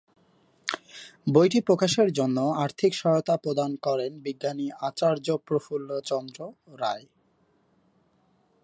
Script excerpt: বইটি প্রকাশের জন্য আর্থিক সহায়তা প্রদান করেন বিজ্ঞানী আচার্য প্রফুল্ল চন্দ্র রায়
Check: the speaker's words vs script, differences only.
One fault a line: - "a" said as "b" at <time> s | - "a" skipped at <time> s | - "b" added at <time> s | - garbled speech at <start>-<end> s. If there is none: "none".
none